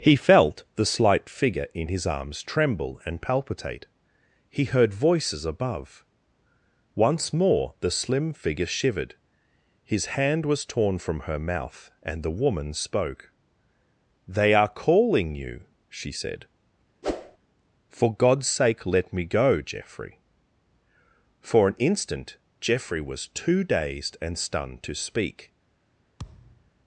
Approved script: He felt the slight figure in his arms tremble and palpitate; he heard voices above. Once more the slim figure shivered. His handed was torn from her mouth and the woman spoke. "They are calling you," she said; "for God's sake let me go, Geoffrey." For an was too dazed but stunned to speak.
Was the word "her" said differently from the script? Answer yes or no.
no